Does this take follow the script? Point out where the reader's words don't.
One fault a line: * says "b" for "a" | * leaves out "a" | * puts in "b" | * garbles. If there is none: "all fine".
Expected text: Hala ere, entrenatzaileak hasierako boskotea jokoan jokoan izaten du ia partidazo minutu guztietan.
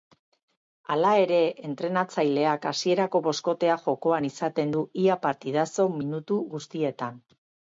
* leaves out "jokoan"